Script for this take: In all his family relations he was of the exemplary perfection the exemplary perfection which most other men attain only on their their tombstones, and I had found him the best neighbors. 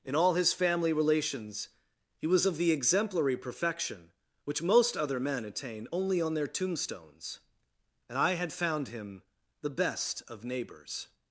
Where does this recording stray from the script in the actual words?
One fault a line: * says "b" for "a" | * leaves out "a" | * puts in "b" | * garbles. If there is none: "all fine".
* leaves out "the exemplary perfection"
* leaves out "their"
* puts in "of"